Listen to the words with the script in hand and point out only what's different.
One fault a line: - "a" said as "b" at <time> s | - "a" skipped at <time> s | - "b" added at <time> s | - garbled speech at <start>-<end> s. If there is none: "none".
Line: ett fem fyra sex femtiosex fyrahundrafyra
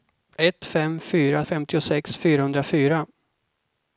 - "sex" skipped at 1.4 s